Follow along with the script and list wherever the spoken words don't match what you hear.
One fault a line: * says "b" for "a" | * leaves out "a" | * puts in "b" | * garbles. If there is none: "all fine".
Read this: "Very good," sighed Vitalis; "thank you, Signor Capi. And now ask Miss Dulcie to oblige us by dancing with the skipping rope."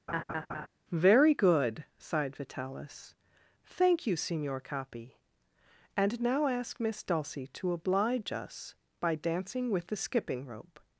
all fine